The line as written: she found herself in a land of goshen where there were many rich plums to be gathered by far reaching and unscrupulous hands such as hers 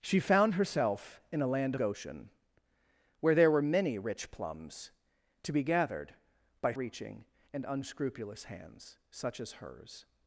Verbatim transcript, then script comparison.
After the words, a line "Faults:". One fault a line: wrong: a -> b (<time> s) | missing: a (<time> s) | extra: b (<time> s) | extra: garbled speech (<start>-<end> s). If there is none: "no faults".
she found herself in a land goshen where there were many rich plums to be gathered by reaching and unscrupulous hands such as hers
Faults:
missing: of (1.8 s)
missing: far (6.7 s)